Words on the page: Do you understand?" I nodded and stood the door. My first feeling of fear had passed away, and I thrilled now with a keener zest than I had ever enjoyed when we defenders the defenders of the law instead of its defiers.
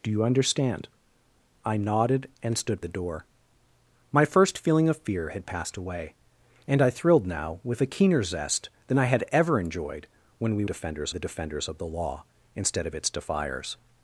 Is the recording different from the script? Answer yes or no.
no